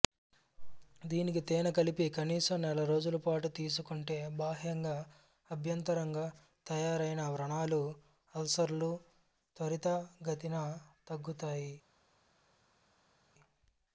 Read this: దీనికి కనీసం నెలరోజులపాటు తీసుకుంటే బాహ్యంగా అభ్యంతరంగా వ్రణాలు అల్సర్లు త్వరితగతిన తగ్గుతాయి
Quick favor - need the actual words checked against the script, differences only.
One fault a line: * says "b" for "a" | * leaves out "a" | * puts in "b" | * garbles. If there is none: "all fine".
* puts in "తేనె కలిపి"
* puts in "తయారైన"